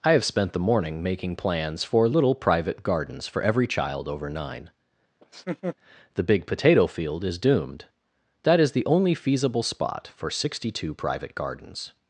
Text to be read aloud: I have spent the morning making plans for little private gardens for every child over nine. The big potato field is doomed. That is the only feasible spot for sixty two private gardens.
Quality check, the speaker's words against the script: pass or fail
pass